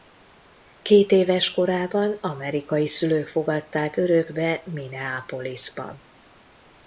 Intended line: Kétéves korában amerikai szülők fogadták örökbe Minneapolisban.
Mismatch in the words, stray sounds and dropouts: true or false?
false